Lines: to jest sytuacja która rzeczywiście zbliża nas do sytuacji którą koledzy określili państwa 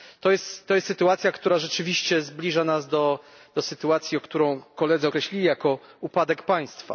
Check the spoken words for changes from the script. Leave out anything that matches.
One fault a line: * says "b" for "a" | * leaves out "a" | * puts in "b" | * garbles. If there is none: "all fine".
* puts in "jako upadek"